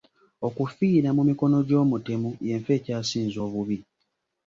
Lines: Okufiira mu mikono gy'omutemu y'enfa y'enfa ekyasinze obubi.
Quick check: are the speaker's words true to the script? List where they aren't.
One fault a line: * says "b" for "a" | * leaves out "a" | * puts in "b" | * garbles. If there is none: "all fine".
* leaves out "y'enfa"